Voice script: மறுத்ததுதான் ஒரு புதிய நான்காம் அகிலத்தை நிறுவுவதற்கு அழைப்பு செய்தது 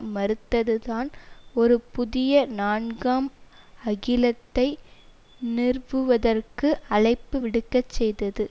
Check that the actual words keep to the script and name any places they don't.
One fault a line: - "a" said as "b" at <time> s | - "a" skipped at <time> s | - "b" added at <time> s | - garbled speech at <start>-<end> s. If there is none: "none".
- "விடுக்கச்" added at 7.4 s